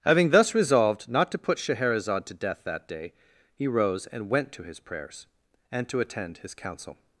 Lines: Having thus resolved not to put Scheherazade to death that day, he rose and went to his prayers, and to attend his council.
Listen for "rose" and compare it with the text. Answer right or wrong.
right